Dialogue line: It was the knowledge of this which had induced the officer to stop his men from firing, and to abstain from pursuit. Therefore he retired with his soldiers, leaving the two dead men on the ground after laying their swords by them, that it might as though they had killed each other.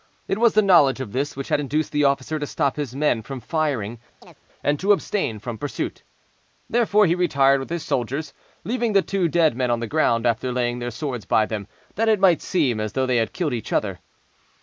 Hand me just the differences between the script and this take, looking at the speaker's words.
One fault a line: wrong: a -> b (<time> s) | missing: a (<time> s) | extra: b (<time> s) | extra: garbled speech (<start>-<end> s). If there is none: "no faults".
extra: seem (12.4 s)